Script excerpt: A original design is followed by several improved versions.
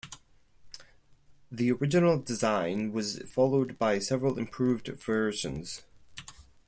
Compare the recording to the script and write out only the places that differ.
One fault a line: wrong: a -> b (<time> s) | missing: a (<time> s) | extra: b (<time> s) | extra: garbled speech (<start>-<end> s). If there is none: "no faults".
wrong: A -> The (1.5 s)
wrong: is -> was (2.9 s)